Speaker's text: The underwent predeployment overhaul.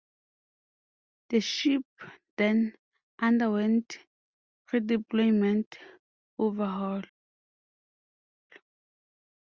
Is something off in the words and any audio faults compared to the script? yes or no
yes